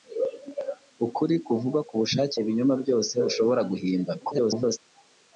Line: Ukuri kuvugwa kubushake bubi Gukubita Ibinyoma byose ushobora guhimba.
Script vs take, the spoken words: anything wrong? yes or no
yes